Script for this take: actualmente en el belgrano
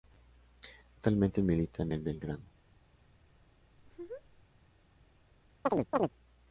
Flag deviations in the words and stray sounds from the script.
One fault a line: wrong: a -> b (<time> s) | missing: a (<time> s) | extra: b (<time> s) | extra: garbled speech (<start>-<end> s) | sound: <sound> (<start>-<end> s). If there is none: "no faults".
extra: milita (1.4 s)
sound: laugh (3.8-4.5 s)
sound: chirp (5.7-6.1 s)